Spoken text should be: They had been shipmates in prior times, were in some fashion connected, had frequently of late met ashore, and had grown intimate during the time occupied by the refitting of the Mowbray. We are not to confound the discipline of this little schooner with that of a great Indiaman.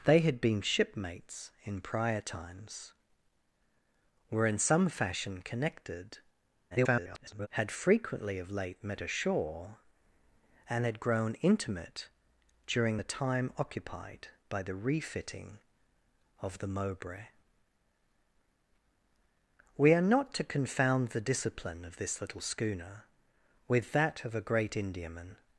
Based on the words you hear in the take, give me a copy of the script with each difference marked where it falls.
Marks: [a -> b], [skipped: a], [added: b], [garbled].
They had been shipmates in prior times, were in some fashion connected, [garbled] had frequently of late met ashore, and had grown intimate during the time occupied by the refitting of the Mowbray. We are not to confound the discipline of this little schooner with that of a great Indiaman.